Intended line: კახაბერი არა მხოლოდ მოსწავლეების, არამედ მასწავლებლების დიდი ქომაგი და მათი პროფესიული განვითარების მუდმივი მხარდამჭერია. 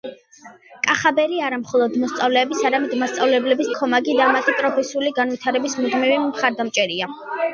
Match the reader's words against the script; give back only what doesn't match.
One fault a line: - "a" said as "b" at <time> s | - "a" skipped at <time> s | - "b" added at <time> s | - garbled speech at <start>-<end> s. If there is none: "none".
- "დიდი" skipped at 3.7 s